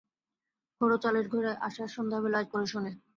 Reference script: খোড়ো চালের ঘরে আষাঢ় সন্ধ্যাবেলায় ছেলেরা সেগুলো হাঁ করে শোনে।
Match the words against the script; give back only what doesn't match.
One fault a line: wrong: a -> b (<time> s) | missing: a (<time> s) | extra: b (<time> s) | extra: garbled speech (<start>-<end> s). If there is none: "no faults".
missing: ছেলেরা সেগুলো হাঁ (2.5 s)